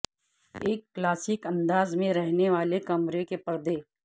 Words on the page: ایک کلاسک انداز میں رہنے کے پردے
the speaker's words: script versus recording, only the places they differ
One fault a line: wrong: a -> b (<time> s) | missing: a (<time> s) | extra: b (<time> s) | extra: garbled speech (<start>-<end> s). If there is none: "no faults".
extra: والے کمرے (2.5 s)